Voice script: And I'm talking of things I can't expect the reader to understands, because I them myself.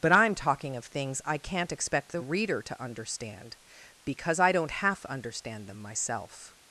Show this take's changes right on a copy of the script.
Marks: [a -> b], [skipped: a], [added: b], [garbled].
[And -> But] I'm talking of things I can't expect the reader to [understands, -> understand] because I [added: don't half understand] them myself.